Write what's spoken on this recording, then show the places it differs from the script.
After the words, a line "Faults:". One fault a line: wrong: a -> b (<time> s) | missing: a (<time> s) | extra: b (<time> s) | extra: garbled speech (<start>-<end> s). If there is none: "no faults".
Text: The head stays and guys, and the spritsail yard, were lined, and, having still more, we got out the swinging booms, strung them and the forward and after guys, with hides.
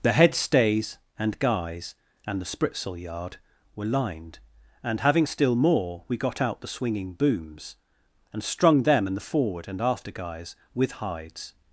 The head stays and guys, and the spritsail yard, were lined, and, having still more, we got out the swinging booms, and strung them and the forward and after guys, with hides.
Faults:
extra: and (8.3 s)